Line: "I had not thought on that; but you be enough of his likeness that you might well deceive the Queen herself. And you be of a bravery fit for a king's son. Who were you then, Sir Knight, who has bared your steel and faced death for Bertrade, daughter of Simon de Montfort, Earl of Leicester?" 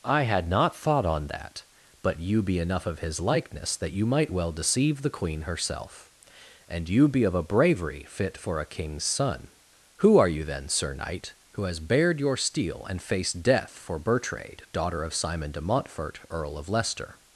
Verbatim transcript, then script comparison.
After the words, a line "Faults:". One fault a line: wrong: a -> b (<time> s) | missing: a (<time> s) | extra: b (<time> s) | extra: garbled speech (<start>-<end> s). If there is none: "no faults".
"I had not thought on that; but you be enough of his likeness that you might well deceive the Queen herself. And you be of a bravery fit for a king's son. Who are you then, Sir Knight, who has bared your steel and faced death for Bertrade, daughter of Simon de Montfort, Earl of Leicester?"
Faults:
wrong: were -> are (10.2 s)